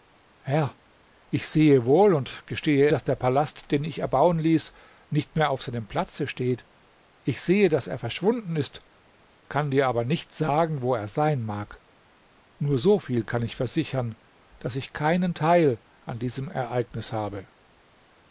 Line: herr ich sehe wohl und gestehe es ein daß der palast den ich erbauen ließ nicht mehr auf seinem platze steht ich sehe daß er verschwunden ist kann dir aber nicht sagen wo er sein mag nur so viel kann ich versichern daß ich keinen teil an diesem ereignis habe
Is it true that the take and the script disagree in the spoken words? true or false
true